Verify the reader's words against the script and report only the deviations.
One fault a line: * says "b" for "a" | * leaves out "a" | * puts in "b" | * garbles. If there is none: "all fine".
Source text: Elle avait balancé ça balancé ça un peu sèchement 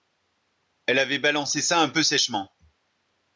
* leaves out "balancé ça"